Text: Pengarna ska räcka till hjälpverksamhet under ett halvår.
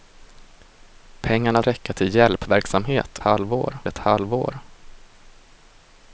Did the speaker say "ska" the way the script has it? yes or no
no